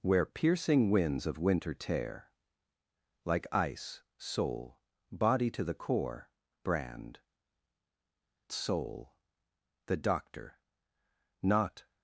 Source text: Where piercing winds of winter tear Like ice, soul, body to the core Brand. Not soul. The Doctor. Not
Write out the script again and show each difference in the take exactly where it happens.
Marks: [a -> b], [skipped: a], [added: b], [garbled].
Where piercing winds of winter tear Like ice, soul, body to the core Brand. [skipped: Not] soul. The Doctor. Not